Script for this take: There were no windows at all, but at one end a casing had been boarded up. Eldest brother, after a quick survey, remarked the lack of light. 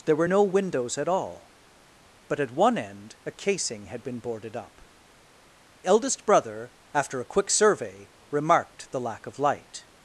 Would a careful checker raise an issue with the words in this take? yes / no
no